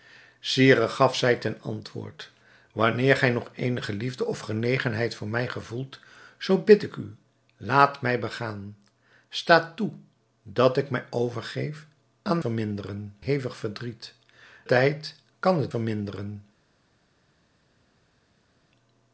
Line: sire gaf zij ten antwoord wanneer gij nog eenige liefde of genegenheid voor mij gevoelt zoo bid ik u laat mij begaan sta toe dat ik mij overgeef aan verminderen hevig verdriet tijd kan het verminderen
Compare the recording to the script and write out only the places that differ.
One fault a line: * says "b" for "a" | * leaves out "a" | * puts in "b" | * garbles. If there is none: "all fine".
all fine